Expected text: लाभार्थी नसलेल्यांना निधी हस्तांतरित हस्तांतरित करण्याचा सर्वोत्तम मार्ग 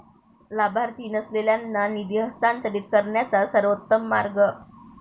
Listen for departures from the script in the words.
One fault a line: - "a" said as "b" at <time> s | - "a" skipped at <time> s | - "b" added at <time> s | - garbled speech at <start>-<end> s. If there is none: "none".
- "हस्तांतरित" skipped at 2.9 s